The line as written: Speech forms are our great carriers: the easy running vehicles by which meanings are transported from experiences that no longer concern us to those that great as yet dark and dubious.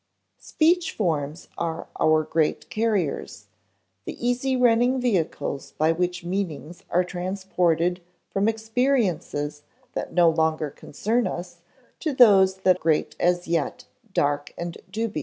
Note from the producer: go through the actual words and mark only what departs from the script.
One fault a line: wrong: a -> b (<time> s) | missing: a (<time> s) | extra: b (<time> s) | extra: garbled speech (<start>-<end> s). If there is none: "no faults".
no faults